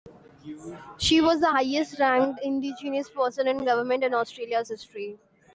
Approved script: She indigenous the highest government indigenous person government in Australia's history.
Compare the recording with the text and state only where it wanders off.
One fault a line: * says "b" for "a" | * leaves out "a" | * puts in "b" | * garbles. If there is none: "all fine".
* says "was" for "indigenous"
* says "ranked" for "government"
* puts in "in"